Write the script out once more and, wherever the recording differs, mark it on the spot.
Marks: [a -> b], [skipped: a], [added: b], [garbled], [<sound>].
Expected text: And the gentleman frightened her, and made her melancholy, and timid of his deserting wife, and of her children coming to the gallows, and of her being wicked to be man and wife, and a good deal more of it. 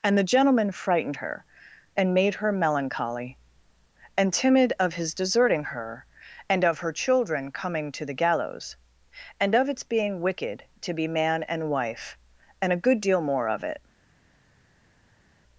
And the gentleman frightened her, and made her melancholy, and timid of his deserting [wife, -> her] and of her children coming to the gallows, and of [her -> its] being wicked to be man and wife, and a good deal more of it.